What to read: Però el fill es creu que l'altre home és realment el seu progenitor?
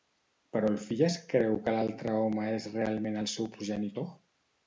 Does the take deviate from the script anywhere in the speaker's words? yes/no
no